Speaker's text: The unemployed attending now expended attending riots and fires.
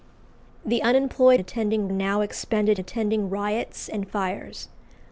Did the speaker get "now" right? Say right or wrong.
right